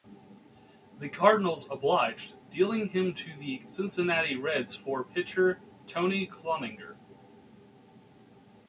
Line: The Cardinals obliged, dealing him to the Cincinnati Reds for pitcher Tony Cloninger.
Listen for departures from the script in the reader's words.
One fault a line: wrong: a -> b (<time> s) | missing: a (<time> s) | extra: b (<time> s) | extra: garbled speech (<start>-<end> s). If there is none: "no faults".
no faults